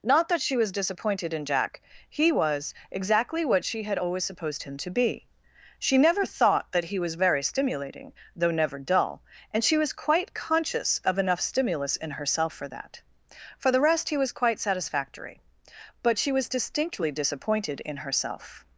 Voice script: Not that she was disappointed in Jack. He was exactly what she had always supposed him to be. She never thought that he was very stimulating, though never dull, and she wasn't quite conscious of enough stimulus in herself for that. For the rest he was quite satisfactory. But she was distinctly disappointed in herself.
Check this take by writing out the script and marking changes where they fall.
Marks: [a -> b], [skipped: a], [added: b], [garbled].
Not that she was disappointed in Jack. He was exactly what she had always supposed him to be. She never thought that he was very stimulating, though never dull, and she [wasn't -> was] quite conscious of enough stimulus in herself for that. For the rest he was quite satisfactory. But she was distinctly disappointed in herself.